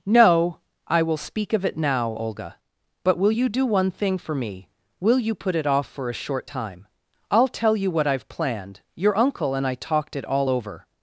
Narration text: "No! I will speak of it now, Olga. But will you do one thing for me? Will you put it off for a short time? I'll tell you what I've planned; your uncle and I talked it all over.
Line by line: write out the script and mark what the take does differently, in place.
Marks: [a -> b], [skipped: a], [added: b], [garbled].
"No! I will speak of it now, Olga. But will you do one thing for me? Will you put it off for a short time? I'll tell you what I've planned; your uncle and I talked it all over.